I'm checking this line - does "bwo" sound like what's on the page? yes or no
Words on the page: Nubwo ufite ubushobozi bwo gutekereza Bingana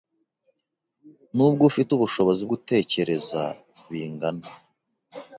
no